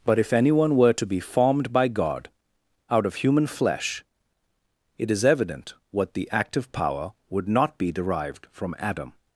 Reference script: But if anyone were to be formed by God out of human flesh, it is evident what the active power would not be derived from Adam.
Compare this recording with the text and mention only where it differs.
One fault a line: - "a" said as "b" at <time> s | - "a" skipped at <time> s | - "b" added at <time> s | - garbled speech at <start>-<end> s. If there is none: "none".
none